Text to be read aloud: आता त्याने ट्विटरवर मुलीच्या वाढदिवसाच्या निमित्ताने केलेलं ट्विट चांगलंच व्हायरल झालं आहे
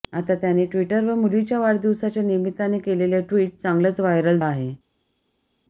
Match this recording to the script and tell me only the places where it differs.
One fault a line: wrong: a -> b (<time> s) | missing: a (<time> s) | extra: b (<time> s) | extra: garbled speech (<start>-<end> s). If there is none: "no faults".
missing: झालं (4.4 s)